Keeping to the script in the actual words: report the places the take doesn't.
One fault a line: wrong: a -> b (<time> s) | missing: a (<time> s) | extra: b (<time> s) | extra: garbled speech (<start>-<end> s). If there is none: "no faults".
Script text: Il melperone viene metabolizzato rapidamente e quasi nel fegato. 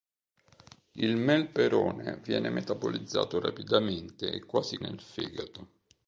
no faults